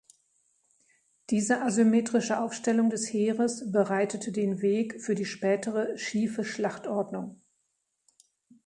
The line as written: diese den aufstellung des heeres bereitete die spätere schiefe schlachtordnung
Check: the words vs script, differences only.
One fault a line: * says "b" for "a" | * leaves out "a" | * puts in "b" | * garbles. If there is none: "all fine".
* says "asymmetrische" for "den"
* puts in "den weg für"